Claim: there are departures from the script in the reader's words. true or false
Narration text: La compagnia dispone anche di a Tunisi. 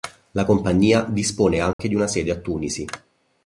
true